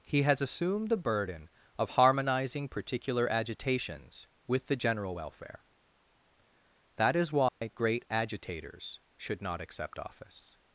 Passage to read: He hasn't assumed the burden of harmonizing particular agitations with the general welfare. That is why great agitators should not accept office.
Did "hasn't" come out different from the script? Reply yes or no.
yes